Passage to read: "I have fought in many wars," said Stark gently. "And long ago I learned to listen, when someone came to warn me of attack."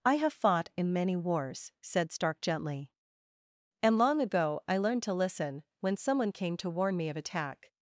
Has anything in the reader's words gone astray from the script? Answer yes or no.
no